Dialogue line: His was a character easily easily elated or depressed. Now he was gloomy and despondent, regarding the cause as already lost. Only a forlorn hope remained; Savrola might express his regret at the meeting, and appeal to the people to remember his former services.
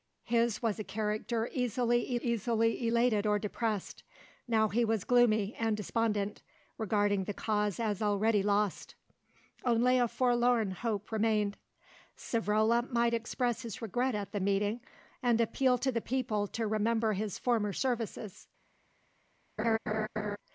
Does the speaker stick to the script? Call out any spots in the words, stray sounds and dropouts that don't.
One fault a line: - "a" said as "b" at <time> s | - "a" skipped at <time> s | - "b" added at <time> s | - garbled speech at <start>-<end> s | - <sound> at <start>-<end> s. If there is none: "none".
- laugh at 19.6-20.4 s